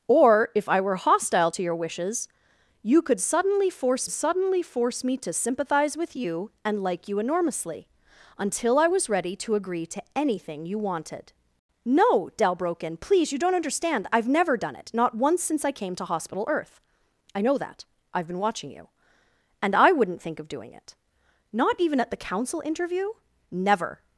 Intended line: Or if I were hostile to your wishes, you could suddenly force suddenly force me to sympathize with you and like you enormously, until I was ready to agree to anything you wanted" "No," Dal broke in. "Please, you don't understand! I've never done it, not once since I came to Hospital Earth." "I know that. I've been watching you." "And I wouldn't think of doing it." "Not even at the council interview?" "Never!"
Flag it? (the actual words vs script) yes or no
no